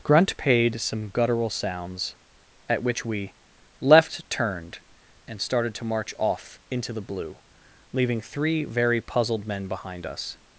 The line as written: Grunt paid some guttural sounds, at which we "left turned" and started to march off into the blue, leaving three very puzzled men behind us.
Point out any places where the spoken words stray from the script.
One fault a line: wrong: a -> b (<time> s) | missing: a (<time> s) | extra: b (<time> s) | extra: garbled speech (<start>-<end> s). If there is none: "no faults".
no faults